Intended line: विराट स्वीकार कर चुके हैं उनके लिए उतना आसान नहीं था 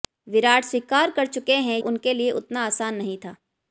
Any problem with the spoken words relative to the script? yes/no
no